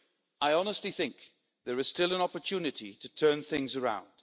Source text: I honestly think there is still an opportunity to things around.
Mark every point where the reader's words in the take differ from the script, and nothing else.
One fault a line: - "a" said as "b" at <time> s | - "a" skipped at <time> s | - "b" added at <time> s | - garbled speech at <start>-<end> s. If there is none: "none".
- "turn" added at 3.1 s